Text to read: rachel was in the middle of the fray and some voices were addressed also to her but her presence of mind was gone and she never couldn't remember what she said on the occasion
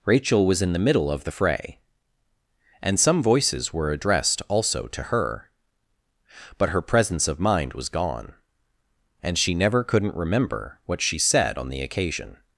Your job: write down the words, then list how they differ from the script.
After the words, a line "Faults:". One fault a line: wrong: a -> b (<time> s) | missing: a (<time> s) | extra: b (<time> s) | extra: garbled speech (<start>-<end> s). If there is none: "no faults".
rachel was in the middle of the fray and some voices were addressed also to her but her presence of mind was gone and she never couldn't remember what she said on the occasion
Faults:
no faults